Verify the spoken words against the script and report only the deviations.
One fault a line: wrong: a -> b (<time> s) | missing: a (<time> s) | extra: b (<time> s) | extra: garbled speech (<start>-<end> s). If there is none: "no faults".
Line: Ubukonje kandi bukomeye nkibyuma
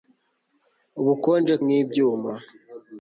missing: kandi bukomeye (1.6 s)